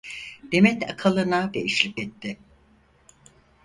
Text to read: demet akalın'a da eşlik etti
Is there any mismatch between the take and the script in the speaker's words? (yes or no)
no